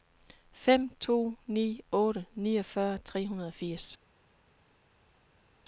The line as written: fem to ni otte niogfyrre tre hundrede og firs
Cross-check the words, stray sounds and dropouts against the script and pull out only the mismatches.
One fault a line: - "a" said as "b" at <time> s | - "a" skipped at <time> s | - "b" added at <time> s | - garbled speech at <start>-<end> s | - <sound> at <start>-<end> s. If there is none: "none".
none